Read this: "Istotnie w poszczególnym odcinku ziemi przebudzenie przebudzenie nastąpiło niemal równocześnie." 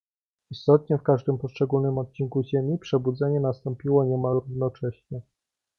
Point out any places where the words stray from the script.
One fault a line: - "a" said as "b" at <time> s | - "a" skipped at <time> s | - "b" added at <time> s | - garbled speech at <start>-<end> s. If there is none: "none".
- "każdym" added at 1.0 s
- "przebudzenie" skipped at 3.4 s